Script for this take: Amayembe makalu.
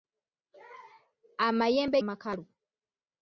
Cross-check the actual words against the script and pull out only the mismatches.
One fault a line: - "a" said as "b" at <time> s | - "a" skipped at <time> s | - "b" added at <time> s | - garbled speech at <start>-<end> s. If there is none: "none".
none